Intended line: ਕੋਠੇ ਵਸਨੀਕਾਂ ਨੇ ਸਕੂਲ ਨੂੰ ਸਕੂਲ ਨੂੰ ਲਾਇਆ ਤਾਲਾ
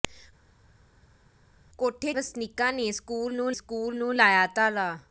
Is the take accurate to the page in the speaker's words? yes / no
yes